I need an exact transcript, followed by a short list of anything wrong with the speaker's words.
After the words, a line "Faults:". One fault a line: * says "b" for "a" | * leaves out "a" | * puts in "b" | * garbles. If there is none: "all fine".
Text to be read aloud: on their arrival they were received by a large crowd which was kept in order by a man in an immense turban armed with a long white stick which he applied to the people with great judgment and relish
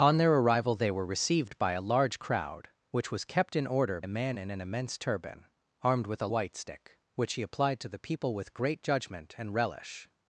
on their arrival they were received by a large crowd which was kept in order a man in an immense turban armed with a white stick which he applied to the people with great judgment and relish
Faults:
* leaves out "by"
* leaves out "long"